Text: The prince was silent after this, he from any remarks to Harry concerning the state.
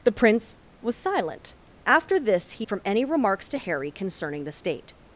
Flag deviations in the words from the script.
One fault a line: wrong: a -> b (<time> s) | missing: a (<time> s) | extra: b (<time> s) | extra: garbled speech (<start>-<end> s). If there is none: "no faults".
no faults